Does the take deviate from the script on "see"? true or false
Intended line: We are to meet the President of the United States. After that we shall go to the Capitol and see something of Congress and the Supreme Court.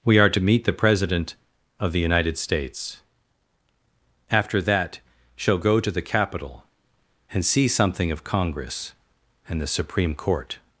false